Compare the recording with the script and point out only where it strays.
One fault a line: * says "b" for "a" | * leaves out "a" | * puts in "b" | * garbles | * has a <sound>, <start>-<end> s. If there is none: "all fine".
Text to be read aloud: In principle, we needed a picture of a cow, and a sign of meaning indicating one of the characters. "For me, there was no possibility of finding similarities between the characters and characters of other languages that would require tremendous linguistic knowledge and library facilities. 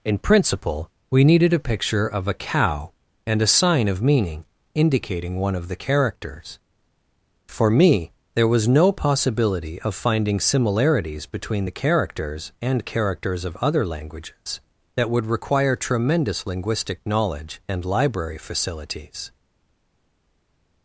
all fine